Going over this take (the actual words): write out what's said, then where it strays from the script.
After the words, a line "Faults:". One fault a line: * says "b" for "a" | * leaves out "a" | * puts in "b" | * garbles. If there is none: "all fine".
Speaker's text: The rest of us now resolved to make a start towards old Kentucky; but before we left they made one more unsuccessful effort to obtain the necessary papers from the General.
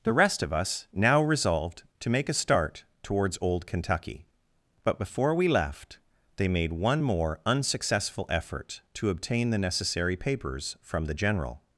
The rest of us now resolved to make a start towards old Kentucky; but before we left they made one more unsuccessful effort to obtain the necessary papers from the General.
Faults:
all fine